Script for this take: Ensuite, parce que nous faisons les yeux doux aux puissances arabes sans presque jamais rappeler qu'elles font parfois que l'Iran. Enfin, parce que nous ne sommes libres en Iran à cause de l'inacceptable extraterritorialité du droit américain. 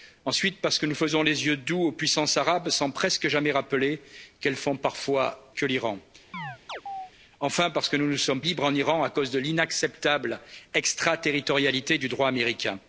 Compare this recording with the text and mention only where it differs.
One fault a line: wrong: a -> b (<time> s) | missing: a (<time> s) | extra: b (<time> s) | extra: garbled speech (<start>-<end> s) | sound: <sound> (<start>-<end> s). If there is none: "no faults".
sound: chirp (6.3-7.1 s)